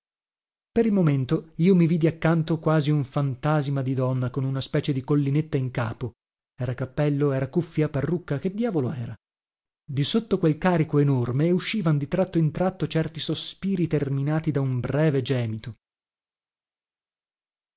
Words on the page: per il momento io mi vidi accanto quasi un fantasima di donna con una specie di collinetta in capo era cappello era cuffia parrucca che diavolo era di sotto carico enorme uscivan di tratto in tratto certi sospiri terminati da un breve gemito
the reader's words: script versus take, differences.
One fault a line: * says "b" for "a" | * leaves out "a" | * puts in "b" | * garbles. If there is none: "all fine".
* puts in "quel"